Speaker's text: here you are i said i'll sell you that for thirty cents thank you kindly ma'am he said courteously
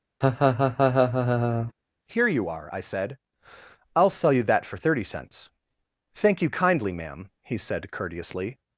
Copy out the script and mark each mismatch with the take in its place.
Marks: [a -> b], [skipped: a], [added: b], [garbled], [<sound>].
[laugh] here you are i said i'll sell you that for thirty cents thank you kindly ma'am he said courteously